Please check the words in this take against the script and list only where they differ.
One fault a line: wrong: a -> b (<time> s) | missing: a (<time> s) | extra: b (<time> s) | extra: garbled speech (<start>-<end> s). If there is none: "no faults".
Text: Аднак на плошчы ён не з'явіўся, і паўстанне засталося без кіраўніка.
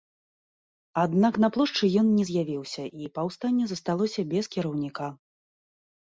no faults